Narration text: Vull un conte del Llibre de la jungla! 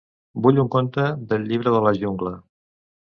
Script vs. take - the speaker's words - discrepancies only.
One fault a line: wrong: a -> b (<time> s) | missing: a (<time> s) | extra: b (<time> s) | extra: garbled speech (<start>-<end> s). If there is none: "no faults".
no faults